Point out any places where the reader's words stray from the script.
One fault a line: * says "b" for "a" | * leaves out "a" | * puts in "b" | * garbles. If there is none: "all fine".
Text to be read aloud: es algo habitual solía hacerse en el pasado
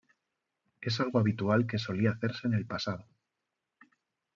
* puts in "que"